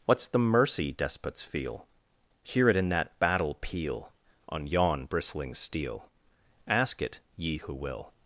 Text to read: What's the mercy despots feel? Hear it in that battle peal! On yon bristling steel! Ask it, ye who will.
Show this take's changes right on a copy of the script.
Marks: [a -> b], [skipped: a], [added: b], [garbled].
What's the mercy despots feel? Hear it in that battle peal! On yon bristling steel! Ask it, ye who will.